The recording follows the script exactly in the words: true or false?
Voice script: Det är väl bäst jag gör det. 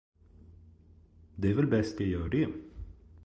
true